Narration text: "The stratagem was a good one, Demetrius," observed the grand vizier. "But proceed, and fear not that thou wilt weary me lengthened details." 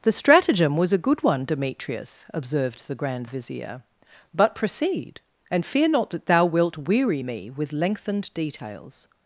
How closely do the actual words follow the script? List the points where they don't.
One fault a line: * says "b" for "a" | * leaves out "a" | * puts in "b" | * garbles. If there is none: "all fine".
* puts in "with"